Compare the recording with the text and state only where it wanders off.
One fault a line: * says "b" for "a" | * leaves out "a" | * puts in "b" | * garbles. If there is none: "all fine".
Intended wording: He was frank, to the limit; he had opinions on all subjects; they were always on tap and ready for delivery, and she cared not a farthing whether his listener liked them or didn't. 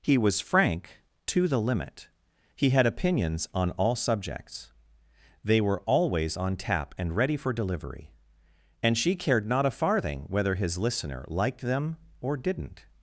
all fine